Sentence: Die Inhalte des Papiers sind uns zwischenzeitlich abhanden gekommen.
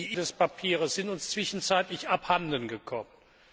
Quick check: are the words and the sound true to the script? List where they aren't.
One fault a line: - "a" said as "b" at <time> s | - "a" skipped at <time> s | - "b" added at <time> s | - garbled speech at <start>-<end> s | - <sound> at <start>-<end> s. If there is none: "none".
- "Inhalte" skipped at 0.2 s